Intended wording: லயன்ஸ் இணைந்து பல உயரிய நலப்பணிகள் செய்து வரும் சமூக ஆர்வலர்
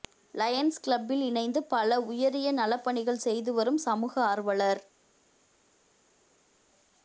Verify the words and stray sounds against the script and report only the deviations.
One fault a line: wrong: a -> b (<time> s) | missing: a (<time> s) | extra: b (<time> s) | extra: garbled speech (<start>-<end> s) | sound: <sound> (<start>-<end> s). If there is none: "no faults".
extra: கிளப்பில் (0.8 s)